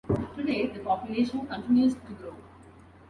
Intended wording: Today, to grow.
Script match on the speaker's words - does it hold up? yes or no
no